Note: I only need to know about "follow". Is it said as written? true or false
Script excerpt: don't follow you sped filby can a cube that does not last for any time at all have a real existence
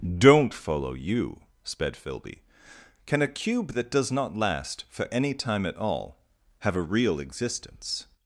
true